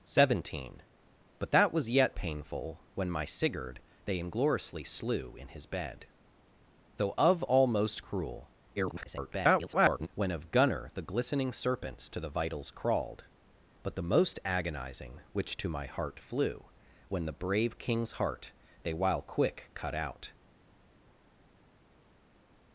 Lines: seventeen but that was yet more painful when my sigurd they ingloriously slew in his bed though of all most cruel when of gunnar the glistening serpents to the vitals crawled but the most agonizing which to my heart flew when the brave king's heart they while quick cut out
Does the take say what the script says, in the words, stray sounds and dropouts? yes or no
no